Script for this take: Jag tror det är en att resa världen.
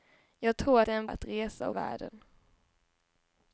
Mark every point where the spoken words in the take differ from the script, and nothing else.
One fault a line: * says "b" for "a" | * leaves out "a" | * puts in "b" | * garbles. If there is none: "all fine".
all fine